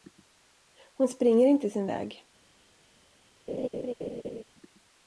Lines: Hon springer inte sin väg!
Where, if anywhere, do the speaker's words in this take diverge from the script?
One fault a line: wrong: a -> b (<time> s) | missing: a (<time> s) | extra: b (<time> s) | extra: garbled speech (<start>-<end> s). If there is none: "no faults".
no faults